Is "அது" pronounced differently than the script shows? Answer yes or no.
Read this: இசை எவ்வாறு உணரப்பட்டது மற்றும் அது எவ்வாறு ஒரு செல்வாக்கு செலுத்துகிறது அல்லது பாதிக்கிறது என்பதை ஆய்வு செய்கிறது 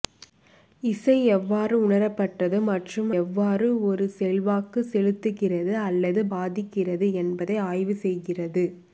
yes